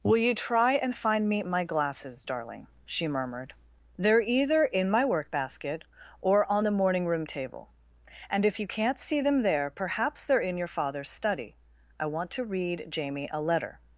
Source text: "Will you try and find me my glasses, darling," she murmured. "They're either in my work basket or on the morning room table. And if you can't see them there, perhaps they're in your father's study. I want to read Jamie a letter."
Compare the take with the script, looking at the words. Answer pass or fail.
pass